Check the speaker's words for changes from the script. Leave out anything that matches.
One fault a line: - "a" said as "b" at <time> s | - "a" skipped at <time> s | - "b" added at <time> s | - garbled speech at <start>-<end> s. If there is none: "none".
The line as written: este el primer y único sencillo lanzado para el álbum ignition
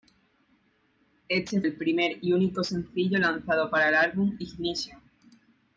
none